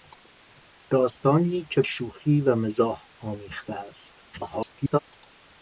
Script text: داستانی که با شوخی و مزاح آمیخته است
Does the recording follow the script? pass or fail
fail